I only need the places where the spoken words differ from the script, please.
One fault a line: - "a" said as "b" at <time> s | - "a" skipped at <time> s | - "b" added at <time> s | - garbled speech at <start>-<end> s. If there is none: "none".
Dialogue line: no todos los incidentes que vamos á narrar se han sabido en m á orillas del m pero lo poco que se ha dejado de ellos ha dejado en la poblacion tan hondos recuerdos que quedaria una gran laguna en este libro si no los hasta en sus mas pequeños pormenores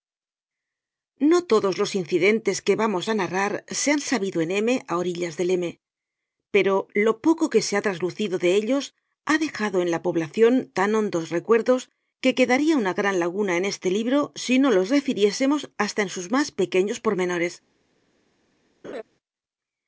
- "dejado" said as "traslucido" at 7.9 s
- "refiriésemos" added at 14.9 s